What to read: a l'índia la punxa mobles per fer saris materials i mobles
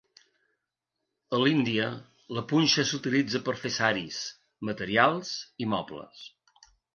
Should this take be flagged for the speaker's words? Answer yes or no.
yes